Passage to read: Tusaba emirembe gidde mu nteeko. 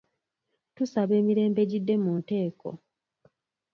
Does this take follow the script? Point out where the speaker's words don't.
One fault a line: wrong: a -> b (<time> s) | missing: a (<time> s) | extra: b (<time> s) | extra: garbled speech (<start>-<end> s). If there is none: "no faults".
no faults